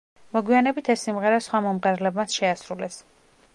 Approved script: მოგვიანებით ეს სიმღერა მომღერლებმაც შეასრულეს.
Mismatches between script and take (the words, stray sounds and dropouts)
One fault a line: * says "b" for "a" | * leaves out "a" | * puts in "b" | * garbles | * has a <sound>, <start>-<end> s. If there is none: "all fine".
* puts in "სხვა"